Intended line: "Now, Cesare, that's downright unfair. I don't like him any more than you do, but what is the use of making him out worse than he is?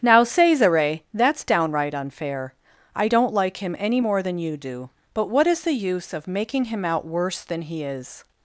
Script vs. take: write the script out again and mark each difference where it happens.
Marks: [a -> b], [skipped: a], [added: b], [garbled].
"Now, Cesare, that's downright unfair. I don't like him any more than you do, but what is the use of making him out worse than he is?